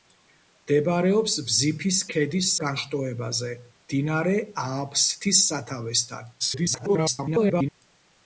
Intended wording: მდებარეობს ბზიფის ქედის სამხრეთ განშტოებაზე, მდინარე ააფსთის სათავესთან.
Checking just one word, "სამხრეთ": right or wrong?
wrong